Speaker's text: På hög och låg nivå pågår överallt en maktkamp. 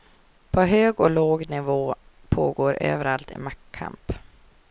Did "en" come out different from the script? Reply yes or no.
no